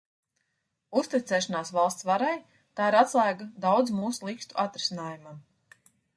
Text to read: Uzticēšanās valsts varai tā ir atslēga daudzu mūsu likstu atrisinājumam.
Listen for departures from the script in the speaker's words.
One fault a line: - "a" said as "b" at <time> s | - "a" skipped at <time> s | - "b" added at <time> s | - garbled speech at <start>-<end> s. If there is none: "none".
none